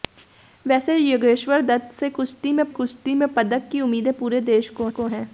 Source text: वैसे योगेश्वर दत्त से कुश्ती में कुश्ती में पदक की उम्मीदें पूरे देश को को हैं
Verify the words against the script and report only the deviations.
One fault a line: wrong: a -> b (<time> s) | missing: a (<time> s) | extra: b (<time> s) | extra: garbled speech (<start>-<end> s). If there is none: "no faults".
no faults